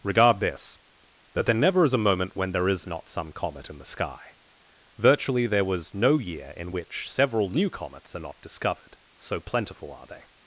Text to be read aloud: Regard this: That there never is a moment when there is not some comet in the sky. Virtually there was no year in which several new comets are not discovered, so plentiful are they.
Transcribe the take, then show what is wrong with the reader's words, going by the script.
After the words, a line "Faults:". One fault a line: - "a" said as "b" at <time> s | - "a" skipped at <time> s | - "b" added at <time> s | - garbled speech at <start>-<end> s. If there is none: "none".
Regard this: That there never is a moment when there is not some comet in the sky. Virtually there was no year in which several new comets are not discovered, so plentiful are they.
Faults:
none